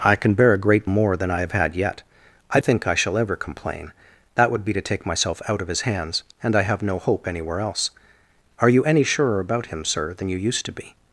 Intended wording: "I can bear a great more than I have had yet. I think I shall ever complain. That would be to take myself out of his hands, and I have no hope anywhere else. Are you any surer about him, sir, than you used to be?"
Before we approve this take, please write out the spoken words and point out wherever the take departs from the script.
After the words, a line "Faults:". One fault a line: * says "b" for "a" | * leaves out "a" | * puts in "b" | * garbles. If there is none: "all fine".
"I can bear a great more than I have had yet. I think I shall ever complain. That would be to take myself out of his hands, and I have no hope anywhere else. Are you any surer about him, sir, than you used to be?"
Faults:
all fine